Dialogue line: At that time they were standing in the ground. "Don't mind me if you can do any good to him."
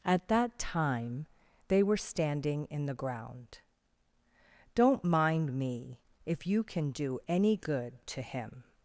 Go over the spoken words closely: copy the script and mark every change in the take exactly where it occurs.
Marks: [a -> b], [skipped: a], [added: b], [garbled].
At that time they were standing in the ground. "Don't mind me if you can do any good to him."